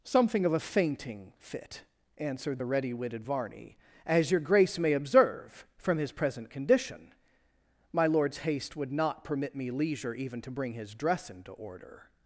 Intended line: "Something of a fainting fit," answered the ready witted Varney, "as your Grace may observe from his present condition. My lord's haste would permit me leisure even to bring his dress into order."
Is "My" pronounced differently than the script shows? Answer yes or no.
no